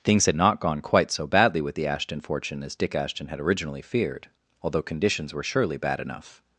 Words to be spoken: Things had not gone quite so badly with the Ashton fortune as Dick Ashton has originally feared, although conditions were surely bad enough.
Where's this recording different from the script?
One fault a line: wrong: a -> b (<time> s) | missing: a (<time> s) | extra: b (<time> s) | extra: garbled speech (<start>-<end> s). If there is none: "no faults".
wrong: has -> had (3.3 s)